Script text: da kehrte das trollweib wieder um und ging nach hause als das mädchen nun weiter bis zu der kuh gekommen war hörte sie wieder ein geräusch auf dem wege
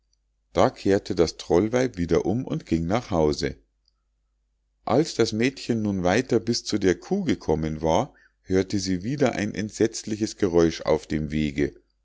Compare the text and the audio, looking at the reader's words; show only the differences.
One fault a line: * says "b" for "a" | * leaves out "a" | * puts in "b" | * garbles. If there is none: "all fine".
* puts in "entsetzliches"